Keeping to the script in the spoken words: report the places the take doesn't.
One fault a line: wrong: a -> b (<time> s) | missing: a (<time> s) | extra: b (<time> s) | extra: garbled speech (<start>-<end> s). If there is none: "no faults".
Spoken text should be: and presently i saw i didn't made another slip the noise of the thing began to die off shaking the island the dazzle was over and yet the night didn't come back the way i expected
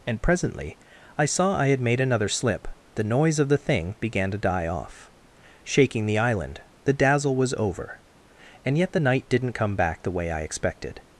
wrong: didn't -> had (1.7 s)